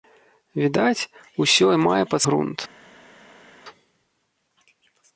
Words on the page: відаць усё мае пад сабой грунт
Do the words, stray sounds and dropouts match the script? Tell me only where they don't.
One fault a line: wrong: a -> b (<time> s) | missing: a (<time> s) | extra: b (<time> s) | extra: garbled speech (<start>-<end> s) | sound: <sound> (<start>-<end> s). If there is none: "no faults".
missing: сабой (2.2 s)